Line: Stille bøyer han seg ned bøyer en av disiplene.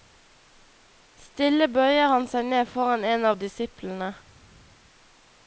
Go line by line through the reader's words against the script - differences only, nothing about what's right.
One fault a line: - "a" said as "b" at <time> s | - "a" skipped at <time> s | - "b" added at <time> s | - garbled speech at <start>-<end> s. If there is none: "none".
- "bøyer" said as "foran" at 2.7 s